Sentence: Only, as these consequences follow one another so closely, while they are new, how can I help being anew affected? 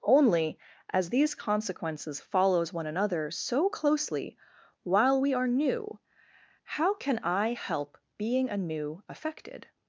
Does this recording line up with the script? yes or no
no